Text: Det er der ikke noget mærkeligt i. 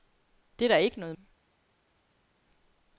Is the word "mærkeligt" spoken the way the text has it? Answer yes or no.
no